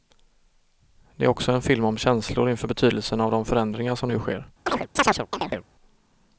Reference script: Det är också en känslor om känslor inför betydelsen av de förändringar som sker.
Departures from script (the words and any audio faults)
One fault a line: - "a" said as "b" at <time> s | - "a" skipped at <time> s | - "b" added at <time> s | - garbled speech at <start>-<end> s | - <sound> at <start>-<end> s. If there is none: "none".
- "känslor" said as "film" at 1.6 s
- "nu" added at 4.1 s
- chirp at 4.7-5.7 s